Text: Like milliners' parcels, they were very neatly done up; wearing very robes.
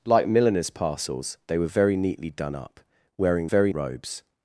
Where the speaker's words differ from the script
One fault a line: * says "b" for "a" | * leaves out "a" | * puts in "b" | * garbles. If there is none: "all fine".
all fine